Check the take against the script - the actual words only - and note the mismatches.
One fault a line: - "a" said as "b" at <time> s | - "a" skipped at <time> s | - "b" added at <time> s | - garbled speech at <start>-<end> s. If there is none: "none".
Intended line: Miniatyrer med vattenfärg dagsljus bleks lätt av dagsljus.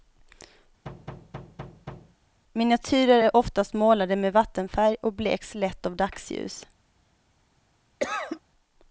- "är oftast målade" added at 3.2 s
- "dagsljus" said as "och" at 5.0 s